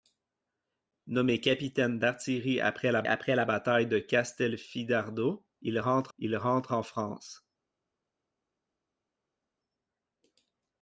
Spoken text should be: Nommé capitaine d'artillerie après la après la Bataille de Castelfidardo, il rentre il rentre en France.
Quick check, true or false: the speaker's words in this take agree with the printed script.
true